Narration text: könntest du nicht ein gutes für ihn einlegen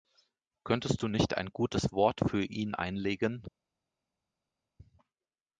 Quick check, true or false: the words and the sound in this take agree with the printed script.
false